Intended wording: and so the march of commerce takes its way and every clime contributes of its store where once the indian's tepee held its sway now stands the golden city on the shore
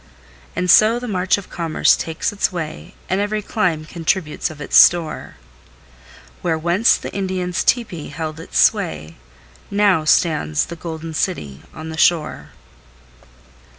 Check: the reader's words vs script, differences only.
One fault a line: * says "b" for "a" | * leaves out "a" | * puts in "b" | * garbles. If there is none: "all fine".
all fine